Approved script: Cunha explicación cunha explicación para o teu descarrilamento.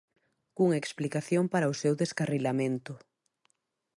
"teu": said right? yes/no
no